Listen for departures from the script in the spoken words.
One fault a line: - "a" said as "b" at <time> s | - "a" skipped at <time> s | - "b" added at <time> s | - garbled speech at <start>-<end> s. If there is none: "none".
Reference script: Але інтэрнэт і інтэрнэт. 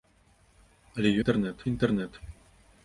none